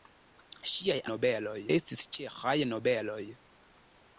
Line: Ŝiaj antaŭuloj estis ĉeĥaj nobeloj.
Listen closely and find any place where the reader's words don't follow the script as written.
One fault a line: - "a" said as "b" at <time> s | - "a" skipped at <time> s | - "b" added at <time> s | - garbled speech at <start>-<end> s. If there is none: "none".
- "antaŭuloj" said as "nobeloj" at 1.1 s